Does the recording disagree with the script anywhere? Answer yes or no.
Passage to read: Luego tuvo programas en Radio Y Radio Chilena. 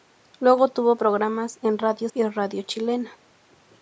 no